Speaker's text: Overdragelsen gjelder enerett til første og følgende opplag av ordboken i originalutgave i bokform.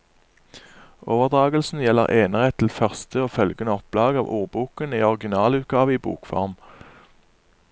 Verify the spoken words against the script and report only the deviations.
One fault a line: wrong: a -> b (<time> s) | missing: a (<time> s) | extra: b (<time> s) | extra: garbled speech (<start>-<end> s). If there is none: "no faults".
no faults